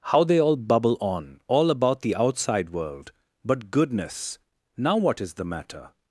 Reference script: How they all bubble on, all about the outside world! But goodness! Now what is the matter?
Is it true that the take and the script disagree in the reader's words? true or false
false